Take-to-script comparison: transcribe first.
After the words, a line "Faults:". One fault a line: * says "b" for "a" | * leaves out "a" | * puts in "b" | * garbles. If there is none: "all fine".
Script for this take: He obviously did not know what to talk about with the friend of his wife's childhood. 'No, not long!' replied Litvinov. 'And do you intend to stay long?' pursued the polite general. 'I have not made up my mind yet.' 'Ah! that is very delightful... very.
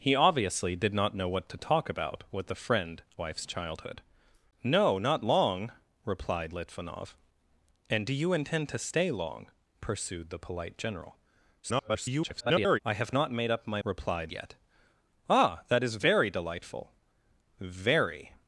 He obviously did not know what to talk about with the friend wife's childhood. 'No, not long!' replied Litvinov. 'And do you intend to stay long?' pursued the polite general. [garbled] 'I have not made up my replied yet.' 'Ah! that is very delightful... very.
Faults:
* leaves out "of his"
* garbles
* says "replied" for "mind"